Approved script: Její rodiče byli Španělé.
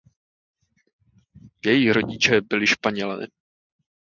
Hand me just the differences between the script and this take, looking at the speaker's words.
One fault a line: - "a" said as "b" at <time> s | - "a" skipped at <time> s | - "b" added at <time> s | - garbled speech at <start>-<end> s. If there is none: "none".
none